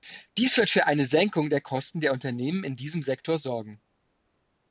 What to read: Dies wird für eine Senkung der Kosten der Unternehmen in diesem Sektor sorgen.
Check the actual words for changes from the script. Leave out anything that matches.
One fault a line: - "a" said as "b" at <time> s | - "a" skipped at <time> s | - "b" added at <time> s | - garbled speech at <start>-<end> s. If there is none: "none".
none